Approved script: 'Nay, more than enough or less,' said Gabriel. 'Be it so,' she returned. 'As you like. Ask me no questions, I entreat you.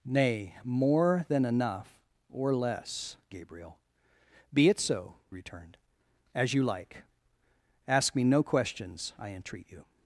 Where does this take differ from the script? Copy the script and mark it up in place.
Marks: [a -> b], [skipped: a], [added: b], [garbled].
'Nay, more than enough or less,' [skipped: said] Gabriel. 'Be it so,' [skipped: she] returned. 'As you like. Ask me no questions, I entreat you.